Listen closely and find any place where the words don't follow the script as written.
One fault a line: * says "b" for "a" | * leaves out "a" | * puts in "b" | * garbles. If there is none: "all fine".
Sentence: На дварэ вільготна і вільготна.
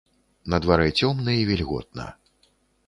* says "цёмна" for "вільготна"